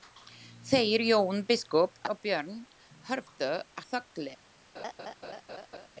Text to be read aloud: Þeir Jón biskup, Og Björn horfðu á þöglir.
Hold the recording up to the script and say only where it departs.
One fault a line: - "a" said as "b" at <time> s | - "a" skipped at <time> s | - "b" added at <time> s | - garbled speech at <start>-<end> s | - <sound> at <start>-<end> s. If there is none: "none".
- laugh at 4.7-5.9 s